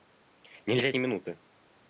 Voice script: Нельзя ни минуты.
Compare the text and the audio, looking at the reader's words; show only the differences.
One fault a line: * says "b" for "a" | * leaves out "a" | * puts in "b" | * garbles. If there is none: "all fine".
all fine